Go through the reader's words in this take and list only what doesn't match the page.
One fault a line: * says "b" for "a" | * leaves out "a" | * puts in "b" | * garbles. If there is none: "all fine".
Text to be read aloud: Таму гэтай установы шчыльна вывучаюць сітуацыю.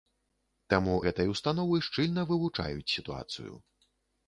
all fine